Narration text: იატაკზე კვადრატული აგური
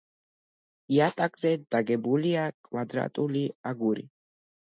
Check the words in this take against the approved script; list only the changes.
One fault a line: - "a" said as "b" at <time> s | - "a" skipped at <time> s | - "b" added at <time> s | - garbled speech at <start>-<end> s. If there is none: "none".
- "დაგებულია" added at 1.7 s